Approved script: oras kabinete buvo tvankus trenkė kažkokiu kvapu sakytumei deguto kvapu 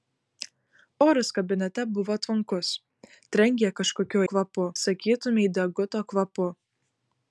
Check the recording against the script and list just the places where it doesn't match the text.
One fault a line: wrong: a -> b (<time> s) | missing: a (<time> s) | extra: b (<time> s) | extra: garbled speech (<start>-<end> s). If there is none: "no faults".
no faults